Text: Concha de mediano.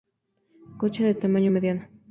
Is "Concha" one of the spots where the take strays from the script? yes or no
no